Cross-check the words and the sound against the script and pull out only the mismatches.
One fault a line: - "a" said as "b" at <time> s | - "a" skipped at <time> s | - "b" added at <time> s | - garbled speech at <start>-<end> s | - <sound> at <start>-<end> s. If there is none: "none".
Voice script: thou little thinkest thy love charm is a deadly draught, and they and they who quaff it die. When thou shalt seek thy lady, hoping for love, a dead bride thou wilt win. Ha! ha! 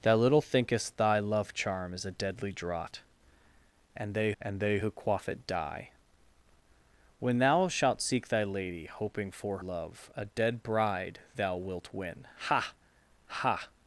none